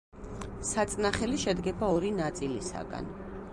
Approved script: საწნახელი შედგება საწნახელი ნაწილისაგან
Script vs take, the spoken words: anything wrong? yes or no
yes